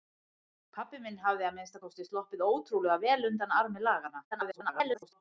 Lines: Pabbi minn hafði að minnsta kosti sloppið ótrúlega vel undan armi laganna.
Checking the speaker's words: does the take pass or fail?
fail